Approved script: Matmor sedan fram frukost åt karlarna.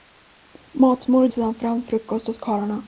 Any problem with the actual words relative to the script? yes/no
no